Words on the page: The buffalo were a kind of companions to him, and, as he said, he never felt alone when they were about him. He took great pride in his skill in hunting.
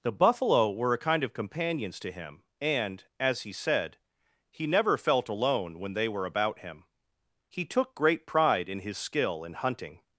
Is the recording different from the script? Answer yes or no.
no